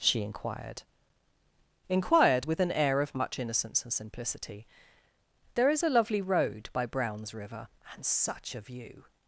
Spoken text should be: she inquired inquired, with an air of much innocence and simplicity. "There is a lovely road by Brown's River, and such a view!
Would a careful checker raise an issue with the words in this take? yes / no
no